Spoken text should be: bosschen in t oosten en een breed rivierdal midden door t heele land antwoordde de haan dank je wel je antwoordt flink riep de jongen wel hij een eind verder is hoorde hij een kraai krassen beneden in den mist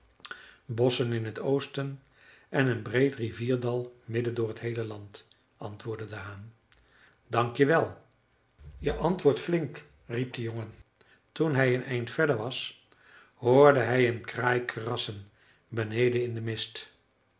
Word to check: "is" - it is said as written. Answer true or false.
false